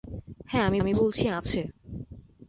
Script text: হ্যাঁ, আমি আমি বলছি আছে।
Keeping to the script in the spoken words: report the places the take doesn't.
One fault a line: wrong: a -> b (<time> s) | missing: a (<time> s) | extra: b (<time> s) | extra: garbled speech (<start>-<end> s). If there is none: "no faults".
no faults